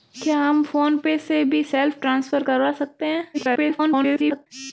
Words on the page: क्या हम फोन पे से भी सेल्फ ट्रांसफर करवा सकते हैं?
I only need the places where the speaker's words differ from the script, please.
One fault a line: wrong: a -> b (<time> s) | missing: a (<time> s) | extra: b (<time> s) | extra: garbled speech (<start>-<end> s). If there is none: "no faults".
extra: garbled speech (3.3-4.5 s)